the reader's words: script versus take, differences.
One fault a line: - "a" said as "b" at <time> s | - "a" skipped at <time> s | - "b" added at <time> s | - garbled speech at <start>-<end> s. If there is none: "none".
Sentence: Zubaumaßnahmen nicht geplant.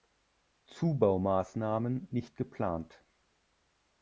none